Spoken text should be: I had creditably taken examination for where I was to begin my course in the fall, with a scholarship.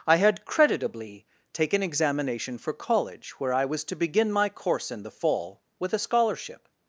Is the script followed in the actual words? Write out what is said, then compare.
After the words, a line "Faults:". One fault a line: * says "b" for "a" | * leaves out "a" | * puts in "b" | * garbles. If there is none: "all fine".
I had creditably taken examination for college, where I was to begin my course in the fall, with a scholarship.
Faults:
* puts in "college"